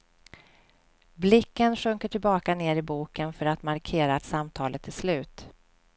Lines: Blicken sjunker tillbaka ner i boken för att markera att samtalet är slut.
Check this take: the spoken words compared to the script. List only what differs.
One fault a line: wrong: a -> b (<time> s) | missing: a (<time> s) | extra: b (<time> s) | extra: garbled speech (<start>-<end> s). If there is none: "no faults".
no faults